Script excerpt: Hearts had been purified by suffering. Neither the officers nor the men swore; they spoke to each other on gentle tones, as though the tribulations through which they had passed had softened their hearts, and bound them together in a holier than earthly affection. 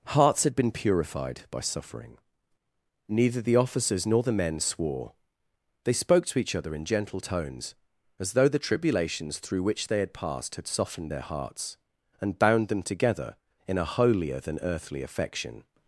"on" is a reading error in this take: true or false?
true